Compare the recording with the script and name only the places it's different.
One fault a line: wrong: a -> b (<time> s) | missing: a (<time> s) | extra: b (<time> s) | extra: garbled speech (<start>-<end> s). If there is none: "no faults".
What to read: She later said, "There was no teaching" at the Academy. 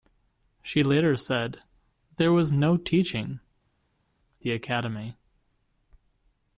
missing: at (3.4 s)